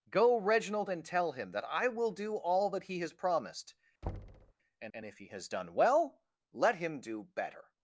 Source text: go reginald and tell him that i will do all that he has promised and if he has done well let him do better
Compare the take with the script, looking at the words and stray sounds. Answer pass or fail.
fail